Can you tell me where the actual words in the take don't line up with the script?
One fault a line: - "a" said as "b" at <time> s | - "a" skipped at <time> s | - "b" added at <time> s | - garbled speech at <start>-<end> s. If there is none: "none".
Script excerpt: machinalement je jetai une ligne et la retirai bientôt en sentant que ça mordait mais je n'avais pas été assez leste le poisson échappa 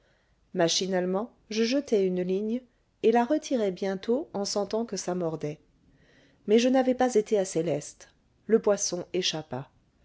none